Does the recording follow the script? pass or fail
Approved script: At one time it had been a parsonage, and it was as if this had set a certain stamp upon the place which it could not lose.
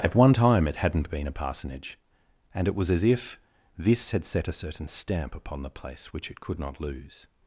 fail